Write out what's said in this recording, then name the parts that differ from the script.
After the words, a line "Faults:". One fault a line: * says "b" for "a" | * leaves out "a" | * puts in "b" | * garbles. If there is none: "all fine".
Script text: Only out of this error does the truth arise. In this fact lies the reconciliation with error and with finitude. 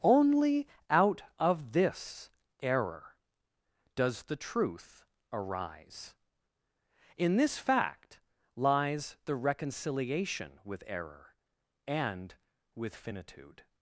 Only out of this error does the truth arise. In this fact lies the reconciliation with error and with finitude.
Faults:
all fine